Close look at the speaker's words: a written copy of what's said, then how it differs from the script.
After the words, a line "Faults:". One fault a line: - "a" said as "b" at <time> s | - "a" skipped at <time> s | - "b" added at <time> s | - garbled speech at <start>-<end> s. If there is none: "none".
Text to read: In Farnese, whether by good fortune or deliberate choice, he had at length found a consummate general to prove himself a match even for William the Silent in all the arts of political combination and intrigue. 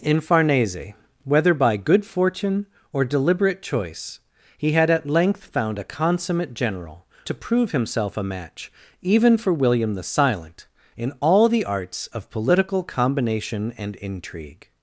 In Farnese, whether by good fortune or deliberate choice, he had at length found a consummate general to prove himself a match even for William the Silent in all the arts of political combination and intrigue.
Faults:
none